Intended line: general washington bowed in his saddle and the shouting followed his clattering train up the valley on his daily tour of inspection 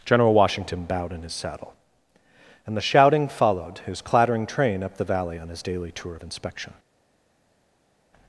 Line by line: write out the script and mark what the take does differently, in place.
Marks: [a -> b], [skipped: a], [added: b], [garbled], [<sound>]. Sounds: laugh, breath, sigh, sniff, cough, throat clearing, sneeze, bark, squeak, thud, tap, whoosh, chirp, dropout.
general washington bowed in his saddle and the shouting followed his clattering train up the valley on his daily tour of inspection